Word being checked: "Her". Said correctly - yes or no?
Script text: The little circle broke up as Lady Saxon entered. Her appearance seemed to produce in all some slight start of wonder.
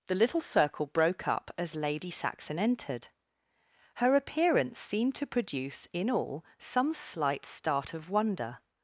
yes